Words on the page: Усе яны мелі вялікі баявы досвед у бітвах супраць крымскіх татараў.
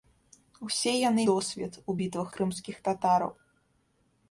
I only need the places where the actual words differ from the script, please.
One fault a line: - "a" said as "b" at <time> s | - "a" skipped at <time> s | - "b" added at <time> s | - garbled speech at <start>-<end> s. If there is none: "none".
- "мелі вялікі баявы" skipped at 1.2 s
- "супраць" skipped at 2.3 s